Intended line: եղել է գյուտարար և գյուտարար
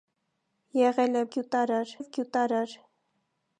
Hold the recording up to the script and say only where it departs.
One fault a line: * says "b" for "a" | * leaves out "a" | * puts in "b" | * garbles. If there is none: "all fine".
all fine